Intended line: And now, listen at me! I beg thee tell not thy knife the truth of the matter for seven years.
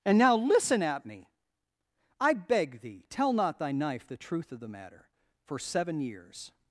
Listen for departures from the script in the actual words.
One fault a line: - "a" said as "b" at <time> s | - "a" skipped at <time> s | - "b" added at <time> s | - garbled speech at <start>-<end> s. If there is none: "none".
none